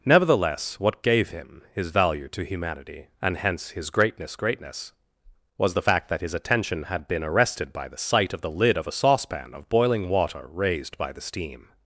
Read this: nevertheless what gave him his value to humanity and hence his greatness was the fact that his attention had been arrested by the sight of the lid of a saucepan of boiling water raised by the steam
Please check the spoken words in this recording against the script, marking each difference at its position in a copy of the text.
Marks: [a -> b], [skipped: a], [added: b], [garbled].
nevertheless what gave him his value to humanity and hence his greatness [added: greatness] was the fact that his attention had been arrested by the sight of the lid of a saucepan of boiling water raised by the steam